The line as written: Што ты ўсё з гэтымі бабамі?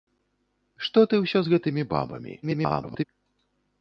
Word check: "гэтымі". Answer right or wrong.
right